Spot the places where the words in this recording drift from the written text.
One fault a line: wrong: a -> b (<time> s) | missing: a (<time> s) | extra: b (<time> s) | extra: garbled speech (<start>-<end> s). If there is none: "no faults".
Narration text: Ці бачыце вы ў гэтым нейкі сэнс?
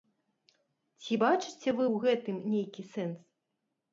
no faults